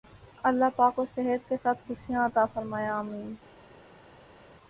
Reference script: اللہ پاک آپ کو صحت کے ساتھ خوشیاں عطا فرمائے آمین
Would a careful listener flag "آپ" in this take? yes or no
yes